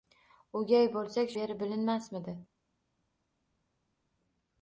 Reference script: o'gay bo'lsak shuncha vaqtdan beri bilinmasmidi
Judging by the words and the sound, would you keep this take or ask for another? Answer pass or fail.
fail